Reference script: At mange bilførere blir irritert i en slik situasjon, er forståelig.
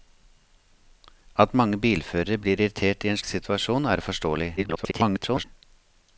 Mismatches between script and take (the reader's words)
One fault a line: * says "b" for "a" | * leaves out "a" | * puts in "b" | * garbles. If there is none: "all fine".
* leaves out "slik"
* garbles